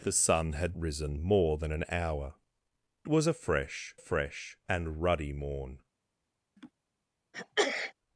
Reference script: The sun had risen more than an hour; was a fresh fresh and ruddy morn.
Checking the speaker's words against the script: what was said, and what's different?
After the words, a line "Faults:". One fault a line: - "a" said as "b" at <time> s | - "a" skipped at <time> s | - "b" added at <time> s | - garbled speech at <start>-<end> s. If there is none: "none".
The sun had risen more than an hour; was a fresh fresh and ruddy morn.
Faults:
none